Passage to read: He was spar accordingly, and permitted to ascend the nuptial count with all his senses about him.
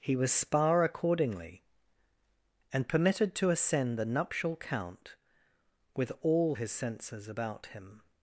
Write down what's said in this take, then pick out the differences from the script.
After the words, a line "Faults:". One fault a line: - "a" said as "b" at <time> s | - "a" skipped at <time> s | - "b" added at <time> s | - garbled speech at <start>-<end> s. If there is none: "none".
He was spar accordingly, and permitted to ascend the nuptial count with all his senses about him.
Faults:
none